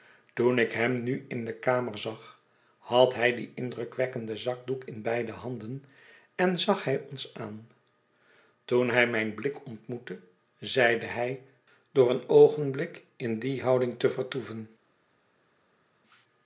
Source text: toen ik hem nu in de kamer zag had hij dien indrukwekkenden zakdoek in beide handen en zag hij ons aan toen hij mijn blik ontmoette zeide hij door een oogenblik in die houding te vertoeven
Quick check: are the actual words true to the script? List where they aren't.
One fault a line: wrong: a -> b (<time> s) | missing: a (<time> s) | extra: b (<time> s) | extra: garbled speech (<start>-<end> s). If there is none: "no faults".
no faults